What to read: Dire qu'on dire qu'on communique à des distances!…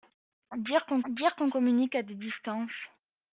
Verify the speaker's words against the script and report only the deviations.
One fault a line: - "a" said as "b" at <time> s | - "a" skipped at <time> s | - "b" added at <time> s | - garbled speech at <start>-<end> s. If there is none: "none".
none